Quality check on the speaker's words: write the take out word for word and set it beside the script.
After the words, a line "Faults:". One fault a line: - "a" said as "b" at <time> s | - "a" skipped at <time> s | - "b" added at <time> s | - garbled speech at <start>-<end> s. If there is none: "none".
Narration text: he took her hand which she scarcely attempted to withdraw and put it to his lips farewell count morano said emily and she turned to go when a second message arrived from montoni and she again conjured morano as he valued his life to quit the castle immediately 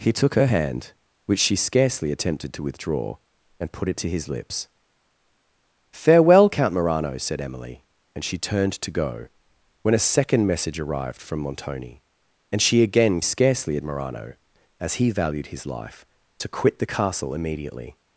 he took her hand which she scarcely attempted to withdraw and put it to his lips farewell count morano said emily and she turned to go when a second message arrived from montoni and she again scarcely morano as he valued his life to quit the castle immediately
Faults:
- "conjured" said as "scarcely" at 13.2 s